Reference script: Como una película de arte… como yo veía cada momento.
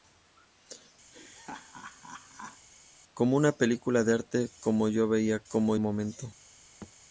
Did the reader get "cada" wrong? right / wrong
wrong